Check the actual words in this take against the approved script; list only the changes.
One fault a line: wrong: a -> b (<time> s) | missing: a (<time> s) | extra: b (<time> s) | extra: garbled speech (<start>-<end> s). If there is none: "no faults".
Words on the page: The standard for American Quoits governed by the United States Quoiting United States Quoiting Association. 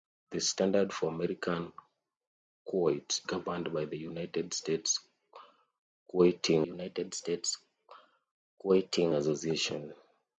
no faults